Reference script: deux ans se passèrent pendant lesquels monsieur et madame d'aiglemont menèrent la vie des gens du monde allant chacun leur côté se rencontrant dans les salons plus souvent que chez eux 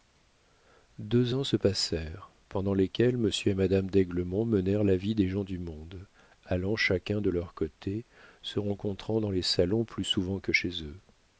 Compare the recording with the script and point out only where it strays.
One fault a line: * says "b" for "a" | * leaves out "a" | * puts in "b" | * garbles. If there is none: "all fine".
* puts in "de"